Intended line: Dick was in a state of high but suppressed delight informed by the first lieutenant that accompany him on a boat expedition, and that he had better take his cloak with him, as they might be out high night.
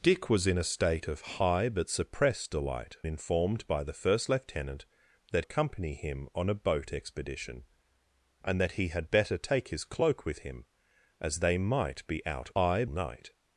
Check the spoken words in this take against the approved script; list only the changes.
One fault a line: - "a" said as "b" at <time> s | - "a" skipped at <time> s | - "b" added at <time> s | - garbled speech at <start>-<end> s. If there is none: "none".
none